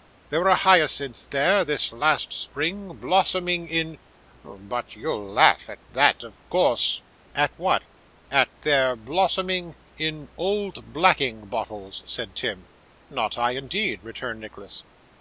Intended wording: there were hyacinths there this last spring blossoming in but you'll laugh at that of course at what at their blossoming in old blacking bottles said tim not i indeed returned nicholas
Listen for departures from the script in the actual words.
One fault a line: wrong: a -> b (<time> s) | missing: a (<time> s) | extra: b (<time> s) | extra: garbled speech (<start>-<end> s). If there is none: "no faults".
no faults